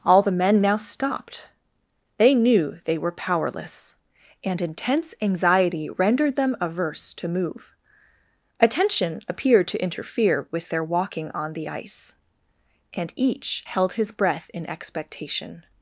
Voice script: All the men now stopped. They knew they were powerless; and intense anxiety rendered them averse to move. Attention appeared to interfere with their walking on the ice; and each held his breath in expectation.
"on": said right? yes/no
yes